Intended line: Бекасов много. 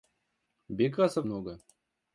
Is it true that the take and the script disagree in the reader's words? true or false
false